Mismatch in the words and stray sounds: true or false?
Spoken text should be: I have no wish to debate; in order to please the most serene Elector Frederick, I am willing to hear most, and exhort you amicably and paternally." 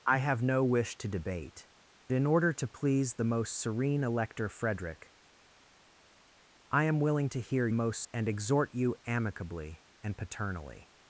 false